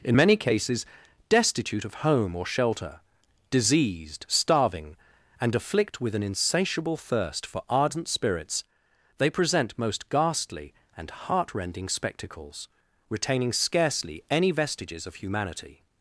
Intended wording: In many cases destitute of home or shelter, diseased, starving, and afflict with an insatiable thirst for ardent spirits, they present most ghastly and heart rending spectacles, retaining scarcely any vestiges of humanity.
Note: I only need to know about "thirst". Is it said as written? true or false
true